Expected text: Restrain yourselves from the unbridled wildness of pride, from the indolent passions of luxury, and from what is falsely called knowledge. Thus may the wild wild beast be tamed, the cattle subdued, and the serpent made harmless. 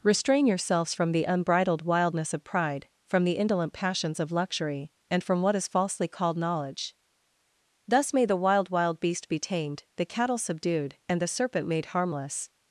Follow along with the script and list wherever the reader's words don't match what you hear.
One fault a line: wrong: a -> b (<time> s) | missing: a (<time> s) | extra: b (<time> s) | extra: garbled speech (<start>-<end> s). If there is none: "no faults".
no faults